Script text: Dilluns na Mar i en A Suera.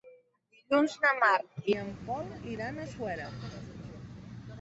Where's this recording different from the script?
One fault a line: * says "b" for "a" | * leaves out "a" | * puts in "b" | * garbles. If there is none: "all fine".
* puts in "Pol iran"